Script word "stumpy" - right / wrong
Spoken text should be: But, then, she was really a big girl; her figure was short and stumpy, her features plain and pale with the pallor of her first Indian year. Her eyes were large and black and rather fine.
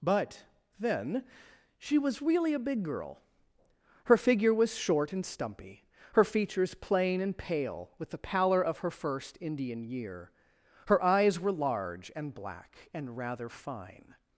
right